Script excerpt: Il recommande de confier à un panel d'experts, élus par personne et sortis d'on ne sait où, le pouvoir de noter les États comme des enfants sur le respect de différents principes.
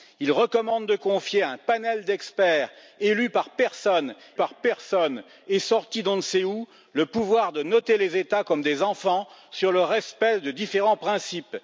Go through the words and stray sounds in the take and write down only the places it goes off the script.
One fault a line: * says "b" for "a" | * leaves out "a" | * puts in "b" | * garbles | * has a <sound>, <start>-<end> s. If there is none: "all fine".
* puts in "par personne"